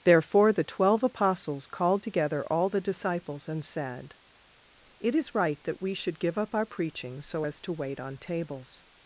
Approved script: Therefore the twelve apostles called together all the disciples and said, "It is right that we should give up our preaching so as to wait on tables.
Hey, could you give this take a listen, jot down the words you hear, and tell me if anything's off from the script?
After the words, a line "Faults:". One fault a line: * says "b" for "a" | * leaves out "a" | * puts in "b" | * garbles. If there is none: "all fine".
Therefore the twelve apostles called together all the disciples and said, "It is right that we should give up our preaching so as to wait on tables.
Faults:
all fine